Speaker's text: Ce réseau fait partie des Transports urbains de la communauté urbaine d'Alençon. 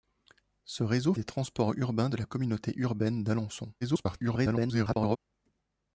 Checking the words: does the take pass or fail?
fail